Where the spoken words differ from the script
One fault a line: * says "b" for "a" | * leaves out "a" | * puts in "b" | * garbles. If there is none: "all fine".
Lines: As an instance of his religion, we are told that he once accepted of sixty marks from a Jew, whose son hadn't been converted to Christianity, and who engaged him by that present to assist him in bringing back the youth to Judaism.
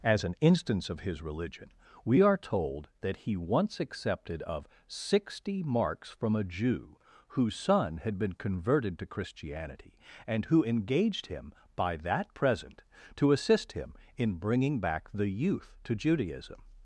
* says "had" for "hadn't"